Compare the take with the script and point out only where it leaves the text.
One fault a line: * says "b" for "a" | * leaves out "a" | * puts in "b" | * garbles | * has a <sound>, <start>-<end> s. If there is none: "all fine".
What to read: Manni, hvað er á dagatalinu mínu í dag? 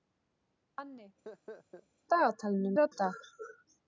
* has a laugh, 1.2-1.9 s
* says "dagatalinu" for "hvað"
* leaves out "dagatalinu mínu"